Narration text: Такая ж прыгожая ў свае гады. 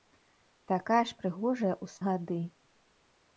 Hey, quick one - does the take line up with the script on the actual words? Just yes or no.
no